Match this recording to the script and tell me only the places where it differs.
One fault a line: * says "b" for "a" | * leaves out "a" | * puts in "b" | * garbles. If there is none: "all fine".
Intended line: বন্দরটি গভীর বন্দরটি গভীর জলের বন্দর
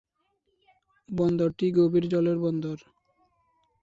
* leaves out "বন্দরটি গভীর"